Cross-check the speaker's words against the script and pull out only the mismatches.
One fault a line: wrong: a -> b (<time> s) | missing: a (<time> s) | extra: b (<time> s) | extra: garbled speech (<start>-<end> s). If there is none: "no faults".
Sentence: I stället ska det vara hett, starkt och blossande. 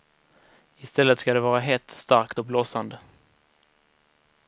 no faults